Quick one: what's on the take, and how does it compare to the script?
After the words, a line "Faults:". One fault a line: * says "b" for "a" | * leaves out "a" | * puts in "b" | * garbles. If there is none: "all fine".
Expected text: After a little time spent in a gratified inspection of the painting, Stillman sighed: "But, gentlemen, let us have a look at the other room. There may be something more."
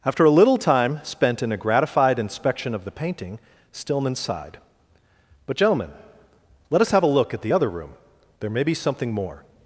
After a little time spent in a gratified inspection of the painting, Stillman sighed: "But, gentlemen, let us have a look at the other room. There may be something more."
Faults:
all fine